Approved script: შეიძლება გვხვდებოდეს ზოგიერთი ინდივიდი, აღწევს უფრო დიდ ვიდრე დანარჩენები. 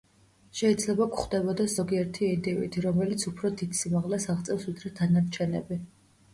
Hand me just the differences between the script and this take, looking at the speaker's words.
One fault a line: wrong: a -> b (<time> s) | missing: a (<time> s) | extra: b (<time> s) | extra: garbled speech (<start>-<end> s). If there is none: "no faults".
wrong: აღწევს -> რომელიც (2.9 s)
extra: სიმაღლეს აღწევს (3.8 s)